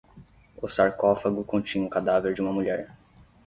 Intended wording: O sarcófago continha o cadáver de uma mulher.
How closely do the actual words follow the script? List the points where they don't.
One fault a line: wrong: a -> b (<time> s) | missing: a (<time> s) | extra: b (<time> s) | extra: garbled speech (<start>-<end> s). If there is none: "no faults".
no faults